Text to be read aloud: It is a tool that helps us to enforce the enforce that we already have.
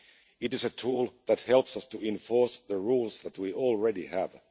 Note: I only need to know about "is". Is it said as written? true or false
true